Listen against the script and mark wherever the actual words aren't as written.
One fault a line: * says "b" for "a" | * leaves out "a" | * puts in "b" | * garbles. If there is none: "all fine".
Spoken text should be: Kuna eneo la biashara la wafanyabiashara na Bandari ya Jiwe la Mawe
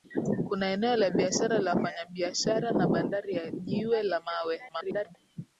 * garbles